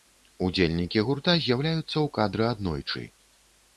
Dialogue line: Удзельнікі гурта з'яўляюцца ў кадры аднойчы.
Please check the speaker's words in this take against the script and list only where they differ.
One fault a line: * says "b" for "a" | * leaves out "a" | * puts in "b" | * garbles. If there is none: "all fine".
all fine